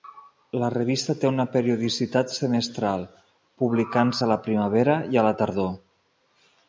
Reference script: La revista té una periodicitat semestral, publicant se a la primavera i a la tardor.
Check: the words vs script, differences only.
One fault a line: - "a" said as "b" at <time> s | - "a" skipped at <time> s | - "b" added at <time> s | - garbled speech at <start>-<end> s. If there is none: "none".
none